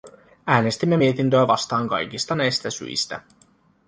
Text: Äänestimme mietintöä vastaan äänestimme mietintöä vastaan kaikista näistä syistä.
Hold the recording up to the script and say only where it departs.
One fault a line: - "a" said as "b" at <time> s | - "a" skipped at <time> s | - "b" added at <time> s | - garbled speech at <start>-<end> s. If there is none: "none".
- "äänestimme mietintöä vastaan" skipped at 1.9 s